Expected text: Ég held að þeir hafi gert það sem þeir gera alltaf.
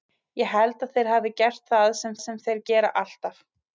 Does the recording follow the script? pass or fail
fail